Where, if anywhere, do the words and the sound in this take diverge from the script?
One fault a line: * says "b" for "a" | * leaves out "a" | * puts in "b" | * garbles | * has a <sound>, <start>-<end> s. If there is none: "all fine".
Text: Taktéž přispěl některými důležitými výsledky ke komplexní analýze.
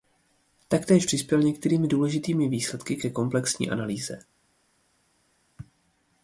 all fine